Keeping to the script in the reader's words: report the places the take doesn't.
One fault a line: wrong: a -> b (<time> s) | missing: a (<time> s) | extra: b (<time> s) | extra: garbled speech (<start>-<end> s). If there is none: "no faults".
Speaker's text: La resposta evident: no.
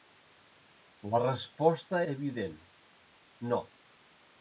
no faults